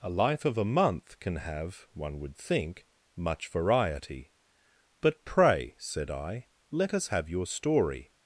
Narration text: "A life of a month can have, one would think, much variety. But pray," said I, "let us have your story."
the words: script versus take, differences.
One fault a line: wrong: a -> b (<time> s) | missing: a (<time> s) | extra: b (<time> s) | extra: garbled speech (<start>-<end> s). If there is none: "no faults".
no faults